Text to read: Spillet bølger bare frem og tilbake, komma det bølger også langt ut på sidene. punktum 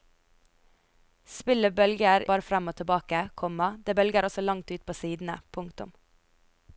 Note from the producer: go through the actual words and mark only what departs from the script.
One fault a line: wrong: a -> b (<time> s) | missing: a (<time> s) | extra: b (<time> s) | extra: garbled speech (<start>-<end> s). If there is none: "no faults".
no faults